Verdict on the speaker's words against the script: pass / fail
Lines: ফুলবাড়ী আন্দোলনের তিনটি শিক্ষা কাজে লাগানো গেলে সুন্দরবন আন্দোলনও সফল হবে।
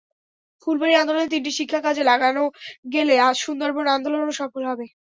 pass